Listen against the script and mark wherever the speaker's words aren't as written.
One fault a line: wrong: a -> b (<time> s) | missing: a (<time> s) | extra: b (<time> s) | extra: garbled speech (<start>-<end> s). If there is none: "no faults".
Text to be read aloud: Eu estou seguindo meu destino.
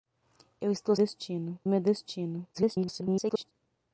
wrong: seguindo -> destino (0.9 s)
extra: garbled speech (2.5-3.5 s)